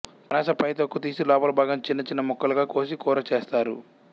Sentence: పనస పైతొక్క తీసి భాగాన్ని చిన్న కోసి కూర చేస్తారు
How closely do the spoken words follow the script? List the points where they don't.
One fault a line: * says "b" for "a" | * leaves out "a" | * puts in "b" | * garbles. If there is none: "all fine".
* puts in "లోపలి"
* puts in "చిన్న ముక్కలుగా"